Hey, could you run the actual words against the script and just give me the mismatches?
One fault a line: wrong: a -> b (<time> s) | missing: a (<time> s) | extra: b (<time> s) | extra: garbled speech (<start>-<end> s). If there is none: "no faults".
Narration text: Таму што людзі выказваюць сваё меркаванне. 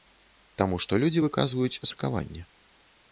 missing: сваё (1.8 s)